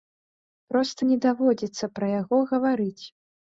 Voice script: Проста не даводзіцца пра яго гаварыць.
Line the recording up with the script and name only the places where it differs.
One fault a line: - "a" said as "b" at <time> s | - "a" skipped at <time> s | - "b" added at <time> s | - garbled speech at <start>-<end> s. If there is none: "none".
none